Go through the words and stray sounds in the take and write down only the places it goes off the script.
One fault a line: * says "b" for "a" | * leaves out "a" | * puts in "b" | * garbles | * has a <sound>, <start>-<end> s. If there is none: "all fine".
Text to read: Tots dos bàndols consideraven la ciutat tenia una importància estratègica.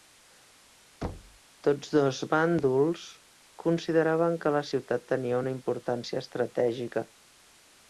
* has a thud, 1.0-1.4 s
* puts in "que"